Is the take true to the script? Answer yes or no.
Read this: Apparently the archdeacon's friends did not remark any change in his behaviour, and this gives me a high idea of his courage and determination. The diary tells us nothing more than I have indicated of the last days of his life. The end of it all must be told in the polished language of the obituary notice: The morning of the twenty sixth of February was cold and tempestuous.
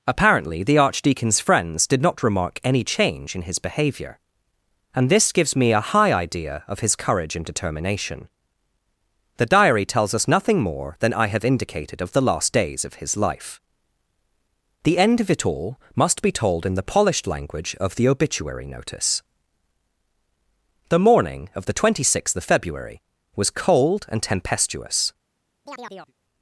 yes